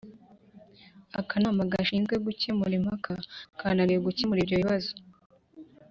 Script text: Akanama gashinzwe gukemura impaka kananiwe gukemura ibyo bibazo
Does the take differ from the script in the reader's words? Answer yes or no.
no